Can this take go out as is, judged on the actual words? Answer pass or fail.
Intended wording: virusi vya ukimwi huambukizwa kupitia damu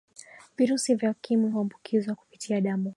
pass